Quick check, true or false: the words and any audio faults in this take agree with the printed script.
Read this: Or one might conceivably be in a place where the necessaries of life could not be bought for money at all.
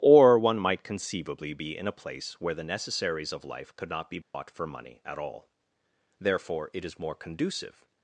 false